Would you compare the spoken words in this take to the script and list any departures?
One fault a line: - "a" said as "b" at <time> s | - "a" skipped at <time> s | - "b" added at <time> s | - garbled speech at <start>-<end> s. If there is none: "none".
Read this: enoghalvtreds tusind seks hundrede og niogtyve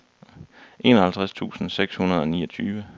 none